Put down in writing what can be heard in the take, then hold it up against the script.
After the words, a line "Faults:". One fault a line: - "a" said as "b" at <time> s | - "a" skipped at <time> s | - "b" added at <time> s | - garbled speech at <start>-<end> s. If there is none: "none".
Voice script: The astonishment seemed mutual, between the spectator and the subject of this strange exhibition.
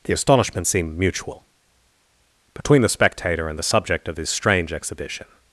The astonishment seemed mutual, between the spectator and the subject of this strange exhibition.
Faults:
none